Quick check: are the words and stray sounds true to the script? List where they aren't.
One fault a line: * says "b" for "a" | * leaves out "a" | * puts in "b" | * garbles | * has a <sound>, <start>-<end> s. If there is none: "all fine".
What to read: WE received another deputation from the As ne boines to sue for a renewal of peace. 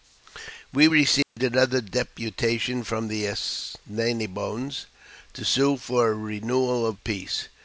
* has a dropout, 1.2-1.4 s